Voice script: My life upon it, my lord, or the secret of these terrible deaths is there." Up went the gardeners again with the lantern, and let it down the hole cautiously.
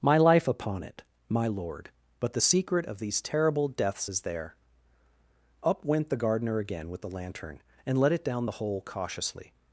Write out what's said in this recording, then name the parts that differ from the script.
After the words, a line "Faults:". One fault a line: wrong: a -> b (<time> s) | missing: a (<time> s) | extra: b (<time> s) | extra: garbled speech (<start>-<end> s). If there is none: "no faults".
My life upon it, my lord, but the secret of these terrible deaths is there." Up went the gardener again with the lantern, and let it down the hole cautiously.
Faults:
wrong: or -> but (2.2 s)
wrong: gardeners -> gardener (6.2 s)